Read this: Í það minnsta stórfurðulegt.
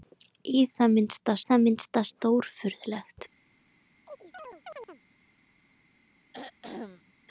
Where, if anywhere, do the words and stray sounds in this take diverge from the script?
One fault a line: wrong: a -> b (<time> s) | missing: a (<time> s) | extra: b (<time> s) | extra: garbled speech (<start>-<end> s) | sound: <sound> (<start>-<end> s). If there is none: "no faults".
extra: það minnsta (1.5 s)
sound: chirp (4.1-5.0 s)
sound: throat clearing (6.3-7.1 s)